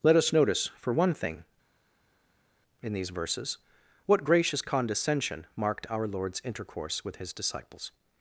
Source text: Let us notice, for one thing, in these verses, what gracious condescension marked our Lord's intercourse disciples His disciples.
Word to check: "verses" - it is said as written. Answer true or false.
true